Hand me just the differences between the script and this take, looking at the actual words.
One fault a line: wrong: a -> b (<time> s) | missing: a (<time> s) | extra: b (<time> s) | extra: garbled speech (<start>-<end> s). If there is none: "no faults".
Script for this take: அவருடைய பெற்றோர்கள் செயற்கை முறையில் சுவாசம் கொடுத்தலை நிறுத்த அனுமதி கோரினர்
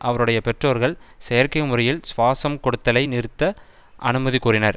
no faults